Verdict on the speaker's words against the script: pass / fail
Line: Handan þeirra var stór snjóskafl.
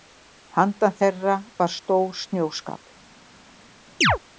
pass